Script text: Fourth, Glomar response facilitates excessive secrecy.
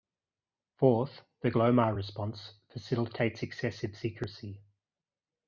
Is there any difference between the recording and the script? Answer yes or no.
yes